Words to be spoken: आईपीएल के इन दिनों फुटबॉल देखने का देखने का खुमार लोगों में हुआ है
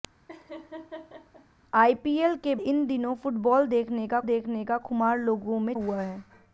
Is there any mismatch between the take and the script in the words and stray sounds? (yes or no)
yes